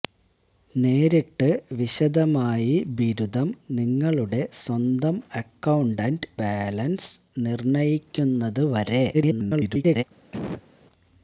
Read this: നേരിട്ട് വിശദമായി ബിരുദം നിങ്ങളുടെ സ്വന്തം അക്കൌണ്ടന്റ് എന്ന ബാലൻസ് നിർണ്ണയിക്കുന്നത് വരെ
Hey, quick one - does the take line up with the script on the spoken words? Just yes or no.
no